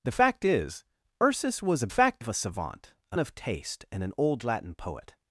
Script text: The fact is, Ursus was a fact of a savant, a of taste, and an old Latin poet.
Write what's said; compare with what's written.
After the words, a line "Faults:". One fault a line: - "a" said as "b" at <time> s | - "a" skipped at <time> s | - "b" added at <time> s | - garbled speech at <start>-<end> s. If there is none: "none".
The fact is, Ursus was a fact of a savant, a of taste, and an old Latin poet.
Faults:
none